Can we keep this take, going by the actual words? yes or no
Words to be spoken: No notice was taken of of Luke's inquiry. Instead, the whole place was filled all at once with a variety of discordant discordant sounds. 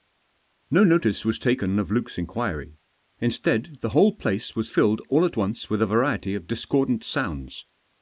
no